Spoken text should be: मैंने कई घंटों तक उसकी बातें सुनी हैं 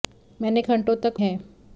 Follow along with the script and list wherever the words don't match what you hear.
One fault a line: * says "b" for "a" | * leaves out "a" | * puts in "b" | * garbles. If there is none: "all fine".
* leaves out "कई"
* leaves out "उसकी बातें सुनी"